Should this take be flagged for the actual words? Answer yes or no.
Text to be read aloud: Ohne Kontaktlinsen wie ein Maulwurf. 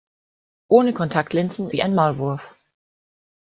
no